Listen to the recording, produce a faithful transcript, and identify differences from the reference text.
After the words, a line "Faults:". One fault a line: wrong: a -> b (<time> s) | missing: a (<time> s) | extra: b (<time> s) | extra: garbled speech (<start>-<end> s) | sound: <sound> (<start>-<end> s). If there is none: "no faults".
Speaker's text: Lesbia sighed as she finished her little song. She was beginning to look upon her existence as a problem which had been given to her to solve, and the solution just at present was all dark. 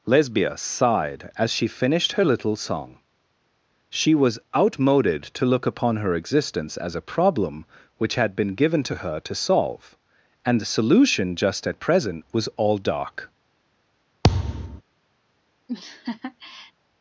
Lesbia sighed as she finished her little song. She was outmoded to look upon her existence as a problem which had been given to her to solve, and the solution just at present was all dark.
Faults:
wrong: beginning -> outmoded (4.6 s)
sound: thud (14.2-14.8 s)
sound: laugh (15.7-16.7 s)